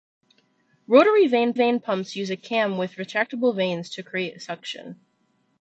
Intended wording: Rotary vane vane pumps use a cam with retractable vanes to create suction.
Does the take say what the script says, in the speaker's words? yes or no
yes